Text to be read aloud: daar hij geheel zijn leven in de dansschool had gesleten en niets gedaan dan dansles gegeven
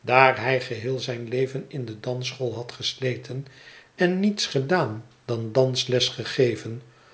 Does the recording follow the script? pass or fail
pass